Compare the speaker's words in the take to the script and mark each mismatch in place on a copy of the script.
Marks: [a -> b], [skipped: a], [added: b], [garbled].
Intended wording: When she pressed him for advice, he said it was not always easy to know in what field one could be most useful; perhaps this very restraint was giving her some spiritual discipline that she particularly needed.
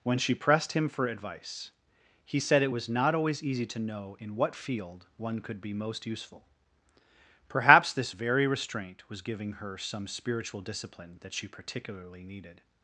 When she pressed him for advice, he said it was not always easy to know in what field one could be most useful; perhaps this very restraint was giving her some spiritual discipline that she particularly needed.